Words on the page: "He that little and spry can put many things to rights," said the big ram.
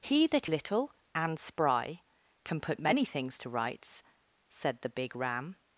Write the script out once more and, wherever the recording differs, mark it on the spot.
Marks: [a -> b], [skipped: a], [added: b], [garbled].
"He that little and spry can put many things to rights," said the big ram.